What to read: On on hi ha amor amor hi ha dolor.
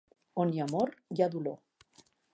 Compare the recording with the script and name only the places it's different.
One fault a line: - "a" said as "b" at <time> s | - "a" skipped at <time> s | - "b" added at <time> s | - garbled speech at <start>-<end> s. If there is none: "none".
- "on" skipped at 0.5 s
- "amor" skipped at 0.9 s